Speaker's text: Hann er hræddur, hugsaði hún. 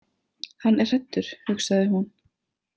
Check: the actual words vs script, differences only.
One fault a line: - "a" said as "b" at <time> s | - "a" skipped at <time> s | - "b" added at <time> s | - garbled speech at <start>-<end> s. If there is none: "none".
none